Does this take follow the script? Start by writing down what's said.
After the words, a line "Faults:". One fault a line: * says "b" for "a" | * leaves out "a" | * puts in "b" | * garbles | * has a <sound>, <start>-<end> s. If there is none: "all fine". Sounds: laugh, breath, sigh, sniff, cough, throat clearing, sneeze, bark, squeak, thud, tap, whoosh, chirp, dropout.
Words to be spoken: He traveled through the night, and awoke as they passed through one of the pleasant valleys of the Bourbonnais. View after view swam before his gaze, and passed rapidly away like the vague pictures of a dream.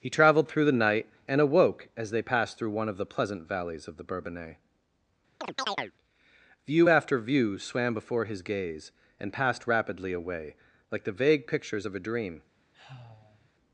He traveled through the night, and awoke as they passed through one of the pleasant valleys of the Bourbonnais. View after view swam before his gaze, and passed rapidly away like the vague pictures of a dream.
Faults:
* has a chirp, 5.4-5.9 s
* has a sigh, 12.7-13.5 s